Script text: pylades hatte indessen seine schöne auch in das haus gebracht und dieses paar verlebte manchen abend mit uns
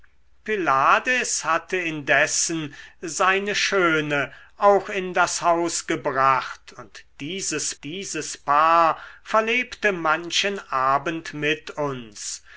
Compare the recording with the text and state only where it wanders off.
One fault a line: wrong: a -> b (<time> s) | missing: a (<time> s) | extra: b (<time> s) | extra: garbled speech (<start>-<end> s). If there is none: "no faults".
extra: dieses (7.8 s)